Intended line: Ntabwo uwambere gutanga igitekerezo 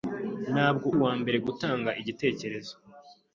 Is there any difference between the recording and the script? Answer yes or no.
no